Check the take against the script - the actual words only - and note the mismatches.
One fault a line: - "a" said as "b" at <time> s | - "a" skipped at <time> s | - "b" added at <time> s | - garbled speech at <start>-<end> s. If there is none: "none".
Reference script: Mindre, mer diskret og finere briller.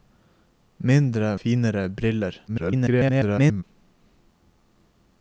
- "mer diskret og" skipped at 1.4 s
- garbled speech at 2.5-3.6 s